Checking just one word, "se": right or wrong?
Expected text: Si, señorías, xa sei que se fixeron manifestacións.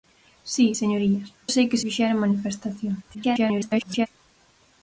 wrong